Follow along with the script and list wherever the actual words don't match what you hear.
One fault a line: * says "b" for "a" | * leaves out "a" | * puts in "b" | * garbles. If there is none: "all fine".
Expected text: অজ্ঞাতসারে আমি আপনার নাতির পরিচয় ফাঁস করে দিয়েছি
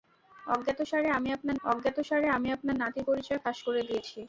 * puts in "অজ্ঞাতসারে আমি আপনার"